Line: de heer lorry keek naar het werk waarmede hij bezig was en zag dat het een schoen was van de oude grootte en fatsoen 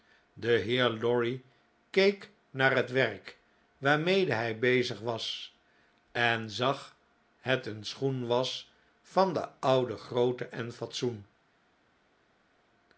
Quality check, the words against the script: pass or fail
fail